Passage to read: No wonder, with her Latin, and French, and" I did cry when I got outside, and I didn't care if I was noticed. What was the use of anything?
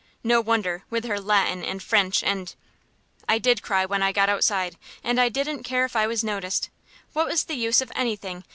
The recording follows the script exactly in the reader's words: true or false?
true